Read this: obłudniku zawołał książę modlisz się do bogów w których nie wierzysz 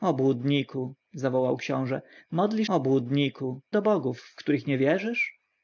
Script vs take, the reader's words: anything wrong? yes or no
yes